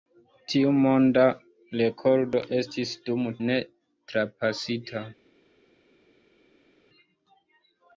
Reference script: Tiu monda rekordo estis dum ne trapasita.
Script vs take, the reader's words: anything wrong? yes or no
no